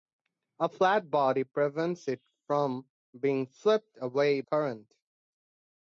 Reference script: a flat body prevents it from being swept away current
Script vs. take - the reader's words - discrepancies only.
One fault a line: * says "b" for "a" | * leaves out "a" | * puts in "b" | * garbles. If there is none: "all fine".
all fine